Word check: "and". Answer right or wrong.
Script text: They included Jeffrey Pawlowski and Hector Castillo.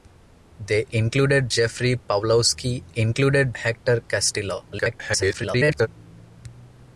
wrong